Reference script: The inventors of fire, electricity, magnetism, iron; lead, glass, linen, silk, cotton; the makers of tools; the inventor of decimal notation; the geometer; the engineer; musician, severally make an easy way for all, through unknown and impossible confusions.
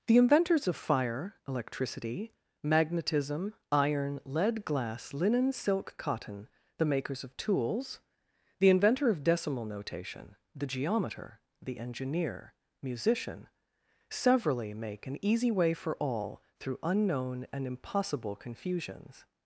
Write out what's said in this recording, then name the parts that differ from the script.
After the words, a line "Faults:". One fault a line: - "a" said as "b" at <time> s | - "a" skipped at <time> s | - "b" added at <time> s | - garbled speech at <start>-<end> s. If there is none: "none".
The inventors of fire, electricity, magnetism, iron; lead, glass, linen, silk, cotton; the makers of tools; the inventor of decimal notation; the geometer; the engineer; musician, severally make an easy way for all, through unknown and impossible confusions.
Faults:
none